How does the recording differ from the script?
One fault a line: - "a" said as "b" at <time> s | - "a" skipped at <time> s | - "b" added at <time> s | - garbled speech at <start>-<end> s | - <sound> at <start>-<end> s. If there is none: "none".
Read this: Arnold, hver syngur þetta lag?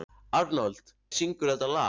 - "hver" skipped at 0.9 s